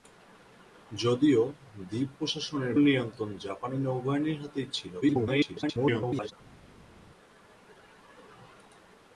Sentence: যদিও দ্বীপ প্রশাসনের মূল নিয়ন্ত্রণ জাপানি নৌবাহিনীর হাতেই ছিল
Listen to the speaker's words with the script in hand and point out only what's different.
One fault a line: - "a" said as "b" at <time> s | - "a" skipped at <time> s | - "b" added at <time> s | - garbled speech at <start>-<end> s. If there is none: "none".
- "মূল" skipped at 2.7 s
- garbled speech at 5.0-6.3 s